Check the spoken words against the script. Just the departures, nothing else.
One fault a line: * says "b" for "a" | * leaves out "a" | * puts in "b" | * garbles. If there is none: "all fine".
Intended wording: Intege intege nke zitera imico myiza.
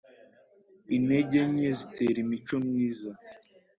* leaves out "intege"